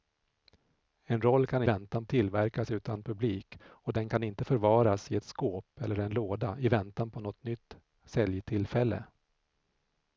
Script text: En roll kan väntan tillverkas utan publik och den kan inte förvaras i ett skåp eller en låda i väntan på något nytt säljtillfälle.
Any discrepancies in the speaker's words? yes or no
no